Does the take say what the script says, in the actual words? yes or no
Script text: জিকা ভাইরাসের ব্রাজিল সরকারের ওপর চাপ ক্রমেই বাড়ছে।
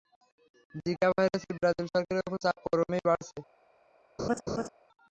yes